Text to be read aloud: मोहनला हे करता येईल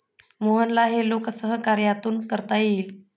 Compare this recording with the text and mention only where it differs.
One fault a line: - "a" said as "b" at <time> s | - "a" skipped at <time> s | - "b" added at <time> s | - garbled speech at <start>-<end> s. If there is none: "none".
- "लोकसहकार्यातून" added at 1.1 s